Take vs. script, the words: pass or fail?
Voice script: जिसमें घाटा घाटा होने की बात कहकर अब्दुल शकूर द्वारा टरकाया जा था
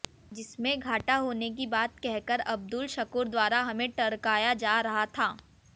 fail